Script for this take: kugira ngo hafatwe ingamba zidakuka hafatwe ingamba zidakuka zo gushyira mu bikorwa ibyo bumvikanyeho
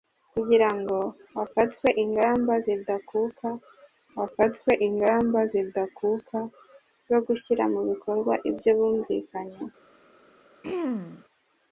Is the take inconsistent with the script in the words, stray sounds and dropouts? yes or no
yes